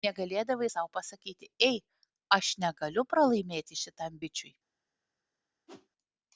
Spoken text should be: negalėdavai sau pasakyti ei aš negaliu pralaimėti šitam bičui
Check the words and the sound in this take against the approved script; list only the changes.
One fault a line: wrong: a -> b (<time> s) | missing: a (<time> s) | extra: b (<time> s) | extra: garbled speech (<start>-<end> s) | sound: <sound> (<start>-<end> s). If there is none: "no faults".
sound: whoosh (5.7-5.9 s)